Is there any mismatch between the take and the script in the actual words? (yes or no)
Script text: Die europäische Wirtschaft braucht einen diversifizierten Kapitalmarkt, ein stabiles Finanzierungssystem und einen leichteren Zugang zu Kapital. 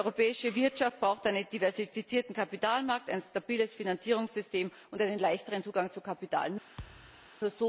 no